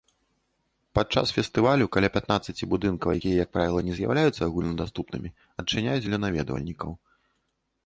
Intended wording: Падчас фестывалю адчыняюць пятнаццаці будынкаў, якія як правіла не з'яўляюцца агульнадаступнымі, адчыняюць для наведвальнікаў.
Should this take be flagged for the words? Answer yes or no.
yes